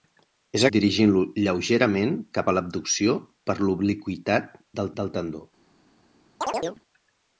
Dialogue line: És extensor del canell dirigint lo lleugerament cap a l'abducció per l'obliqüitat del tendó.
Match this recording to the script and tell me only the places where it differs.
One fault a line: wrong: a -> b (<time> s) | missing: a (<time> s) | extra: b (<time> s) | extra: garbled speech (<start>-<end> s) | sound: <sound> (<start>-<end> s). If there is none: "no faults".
missing: extensor del canell (0.6 s)
extra: del (5.0 s)
sound: chirp (6.4-6.8 s)